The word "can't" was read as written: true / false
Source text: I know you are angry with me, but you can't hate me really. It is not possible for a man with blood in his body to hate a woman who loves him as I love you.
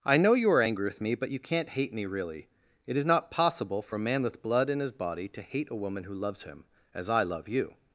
true